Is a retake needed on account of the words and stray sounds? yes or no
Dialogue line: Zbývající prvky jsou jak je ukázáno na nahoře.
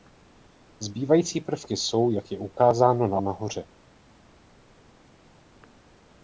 no